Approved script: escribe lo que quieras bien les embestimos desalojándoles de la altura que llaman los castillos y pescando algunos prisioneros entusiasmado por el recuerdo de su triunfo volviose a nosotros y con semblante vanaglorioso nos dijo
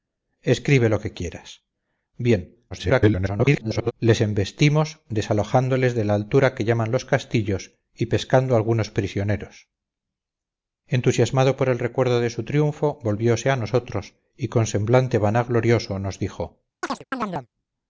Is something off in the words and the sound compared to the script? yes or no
yes